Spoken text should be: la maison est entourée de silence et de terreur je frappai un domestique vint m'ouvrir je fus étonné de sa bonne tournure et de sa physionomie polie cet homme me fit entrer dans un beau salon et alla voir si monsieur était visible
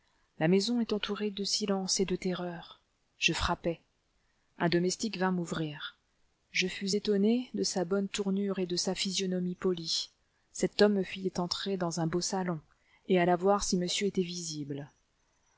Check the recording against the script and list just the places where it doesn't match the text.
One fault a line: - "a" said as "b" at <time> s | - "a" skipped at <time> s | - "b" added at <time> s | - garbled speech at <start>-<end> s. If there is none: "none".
none